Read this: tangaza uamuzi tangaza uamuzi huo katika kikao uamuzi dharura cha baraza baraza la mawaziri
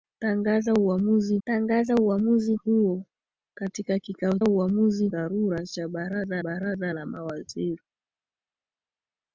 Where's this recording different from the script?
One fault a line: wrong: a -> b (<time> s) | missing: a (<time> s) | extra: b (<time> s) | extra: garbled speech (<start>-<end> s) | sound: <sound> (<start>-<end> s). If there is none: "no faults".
no faults